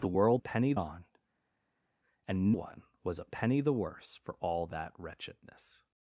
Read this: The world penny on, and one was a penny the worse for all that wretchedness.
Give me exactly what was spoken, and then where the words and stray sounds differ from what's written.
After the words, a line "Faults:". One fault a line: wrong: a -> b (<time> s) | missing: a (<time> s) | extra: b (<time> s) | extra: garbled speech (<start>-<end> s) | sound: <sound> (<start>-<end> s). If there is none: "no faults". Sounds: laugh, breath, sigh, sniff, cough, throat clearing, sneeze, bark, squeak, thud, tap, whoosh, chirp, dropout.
The world penny on, and one was a penny the worse for all that wretchedness.
Faults:
no faults